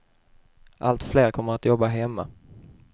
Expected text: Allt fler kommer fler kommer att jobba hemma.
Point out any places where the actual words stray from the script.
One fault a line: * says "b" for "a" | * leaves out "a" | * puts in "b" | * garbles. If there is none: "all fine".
* leaves out "fler kommer"